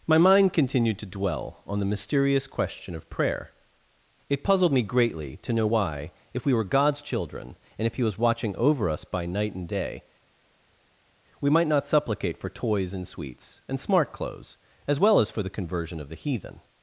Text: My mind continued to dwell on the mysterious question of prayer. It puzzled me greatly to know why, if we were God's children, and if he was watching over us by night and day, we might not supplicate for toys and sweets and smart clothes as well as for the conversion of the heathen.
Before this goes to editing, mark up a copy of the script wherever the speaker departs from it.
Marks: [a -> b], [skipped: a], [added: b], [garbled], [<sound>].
My mind continued to dwell on the mysterious question of prayer. It puzzled me greatly to know why, if we were God's children, and if he was watching over us by night and day, we might not supplicate for toys and sweets and smart clothes as well as for the conversion of the heathen.